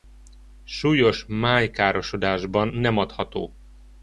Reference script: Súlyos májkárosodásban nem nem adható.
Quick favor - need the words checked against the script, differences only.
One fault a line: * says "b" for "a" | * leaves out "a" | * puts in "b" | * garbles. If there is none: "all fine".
* leaves out "nem"